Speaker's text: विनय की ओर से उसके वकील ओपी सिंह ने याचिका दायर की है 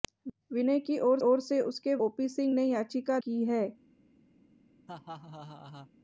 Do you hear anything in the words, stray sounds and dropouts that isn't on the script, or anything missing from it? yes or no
yes